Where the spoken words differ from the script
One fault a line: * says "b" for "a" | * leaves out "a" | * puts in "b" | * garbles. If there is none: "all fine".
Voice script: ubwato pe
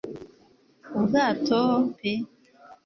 all fine